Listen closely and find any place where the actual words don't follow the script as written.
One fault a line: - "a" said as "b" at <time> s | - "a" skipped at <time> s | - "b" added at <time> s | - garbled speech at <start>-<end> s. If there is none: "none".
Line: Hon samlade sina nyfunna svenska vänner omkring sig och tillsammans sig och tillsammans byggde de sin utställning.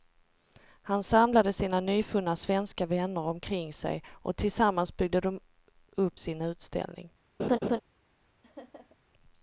- "Hon" said as "Han" at 0.8 s
- "sig och tillsammans" skipped at 5.0 s
- "upp" added at 5.9 s